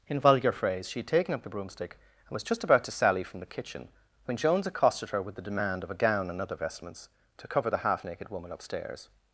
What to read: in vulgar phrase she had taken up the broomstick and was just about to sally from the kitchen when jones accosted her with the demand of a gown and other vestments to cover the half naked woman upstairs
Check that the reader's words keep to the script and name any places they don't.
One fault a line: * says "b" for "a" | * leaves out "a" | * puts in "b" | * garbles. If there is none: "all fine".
all fine